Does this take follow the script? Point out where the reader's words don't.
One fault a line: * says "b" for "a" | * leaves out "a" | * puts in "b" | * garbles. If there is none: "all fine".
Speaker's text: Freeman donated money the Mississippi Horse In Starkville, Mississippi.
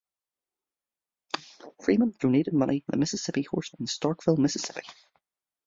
all fine